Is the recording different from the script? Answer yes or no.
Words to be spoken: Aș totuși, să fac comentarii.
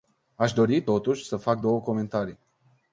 yes